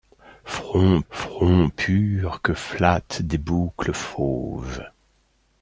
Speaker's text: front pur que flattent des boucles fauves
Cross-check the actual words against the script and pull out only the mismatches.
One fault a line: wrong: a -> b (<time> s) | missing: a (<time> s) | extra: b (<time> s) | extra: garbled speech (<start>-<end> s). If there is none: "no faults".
extra: front (1.1 s)